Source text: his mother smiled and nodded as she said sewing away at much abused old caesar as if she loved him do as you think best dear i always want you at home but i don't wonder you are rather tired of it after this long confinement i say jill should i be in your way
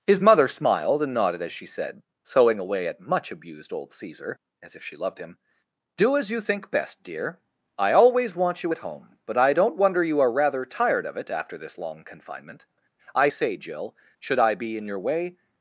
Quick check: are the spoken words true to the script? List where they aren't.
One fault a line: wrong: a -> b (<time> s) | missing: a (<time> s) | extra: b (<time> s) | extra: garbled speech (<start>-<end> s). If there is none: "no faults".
no faults